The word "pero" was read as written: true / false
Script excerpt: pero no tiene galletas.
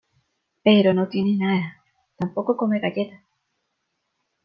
true